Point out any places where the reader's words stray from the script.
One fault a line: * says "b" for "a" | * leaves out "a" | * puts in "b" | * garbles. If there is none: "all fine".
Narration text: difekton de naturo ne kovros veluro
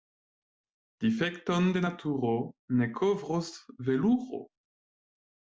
all fine